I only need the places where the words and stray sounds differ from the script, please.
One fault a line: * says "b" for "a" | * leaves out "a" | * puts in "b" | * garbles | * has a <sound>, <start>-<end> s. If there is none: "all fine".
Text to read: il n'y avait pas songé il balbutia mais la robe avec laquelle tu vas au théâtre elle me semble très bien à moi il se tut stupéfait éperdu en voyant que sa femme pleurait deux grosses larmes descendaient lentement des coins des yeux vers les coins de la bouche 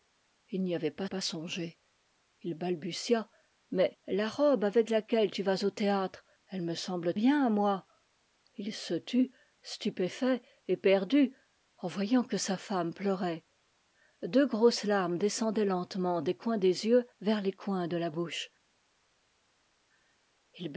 * puts in "pas"
* leaves out "très"